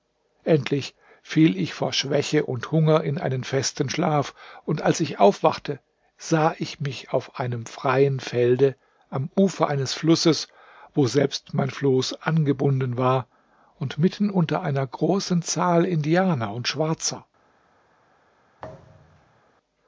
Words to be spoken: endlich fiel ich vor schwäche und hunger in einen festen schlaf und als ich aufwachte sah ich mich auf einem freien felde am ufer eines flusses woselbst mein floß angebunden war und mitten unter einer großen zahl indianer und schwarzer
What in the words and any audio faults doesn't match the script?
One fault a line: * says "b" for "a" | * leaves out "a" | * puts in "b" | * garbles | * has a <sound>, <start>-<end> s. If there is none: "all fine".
* has a thud, 18.6-19.4 s